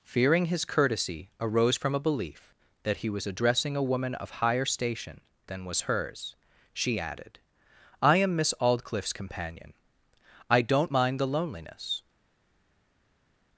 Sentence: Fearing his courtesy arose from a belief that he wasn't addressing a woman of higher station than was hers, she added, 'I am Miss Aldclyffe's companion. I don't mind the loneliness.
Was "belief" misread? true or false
false